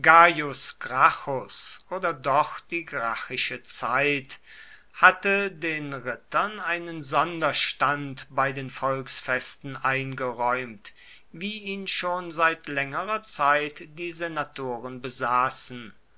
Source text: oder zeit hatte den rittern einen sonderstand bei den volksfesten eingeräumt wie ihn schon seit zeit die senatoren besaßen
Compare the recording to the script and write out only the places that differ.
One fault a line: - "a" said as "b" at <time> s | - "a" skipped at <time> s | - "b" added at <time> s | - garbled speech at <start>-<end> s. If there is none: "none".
- "doch die gracchische" added at 2.1 s
- "längerer" added at 12.7 s